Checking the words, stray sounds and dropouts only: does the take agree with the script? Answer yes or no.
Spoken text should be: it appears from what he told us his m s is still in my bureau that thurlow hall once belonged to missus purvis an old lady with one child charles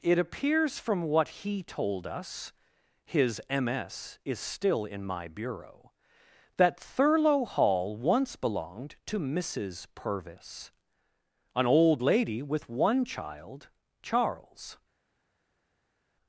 yes